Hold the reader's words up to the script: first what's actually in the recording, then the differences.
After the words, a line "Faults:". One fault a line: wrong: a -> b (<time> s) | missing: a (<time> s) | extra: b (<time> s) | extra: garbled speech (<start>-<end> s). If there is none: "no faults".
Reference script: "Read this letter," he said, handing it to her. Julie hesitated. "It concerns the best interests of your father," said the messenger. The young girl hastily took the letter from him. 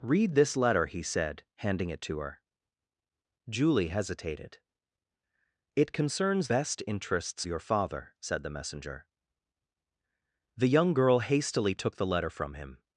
"Read this letter," he said, handing it to her. Julie hesitated. "It concerns best interests your father," said the messenger. The young girl hastily took the letter from him.
Faults:
missing: the (6.5 s)
missing: of (7.5 s)